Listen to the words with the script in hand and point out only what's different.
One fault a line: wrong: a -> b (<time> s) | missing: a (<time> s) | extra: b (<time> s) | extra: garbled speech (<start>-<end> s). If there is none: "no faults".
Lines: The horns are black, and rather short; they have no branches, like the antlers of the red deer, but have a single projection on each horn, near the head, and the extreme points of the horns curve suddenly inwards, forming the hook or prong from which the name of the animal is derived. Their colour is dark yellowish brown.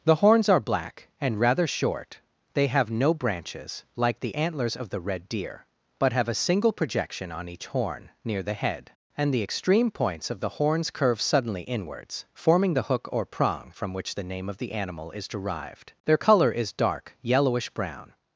no faults